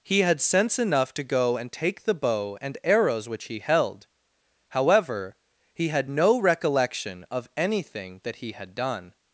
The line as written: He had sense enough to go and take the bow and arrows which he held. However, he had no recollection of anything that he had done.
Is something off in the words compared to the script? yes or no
no